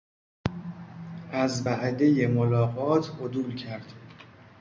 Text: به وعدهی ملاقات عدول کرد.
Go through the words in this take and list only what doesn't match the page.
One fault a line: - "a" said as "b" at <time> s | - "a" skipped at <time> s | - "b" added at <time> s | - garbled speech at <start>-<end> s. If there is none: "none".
- "به" said as "از" at 1.3 s